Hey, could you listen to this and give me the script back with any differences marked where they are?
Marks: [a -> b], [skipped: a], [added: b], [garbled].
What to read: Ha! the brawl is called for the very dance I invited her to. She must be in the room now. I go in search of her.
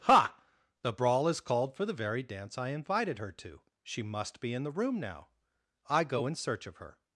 Ha! the brawl is called for the very dance I invited her to. She must be in the room now. I go in search of her.